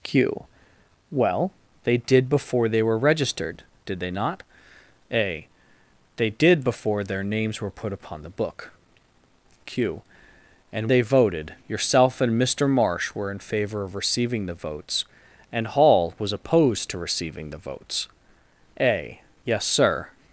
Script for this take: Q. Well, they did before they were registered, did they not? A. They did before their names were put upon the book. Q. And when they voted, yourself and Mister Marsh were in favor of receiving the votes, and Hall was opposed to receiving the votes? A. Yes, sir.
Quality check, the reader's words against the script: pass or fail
fail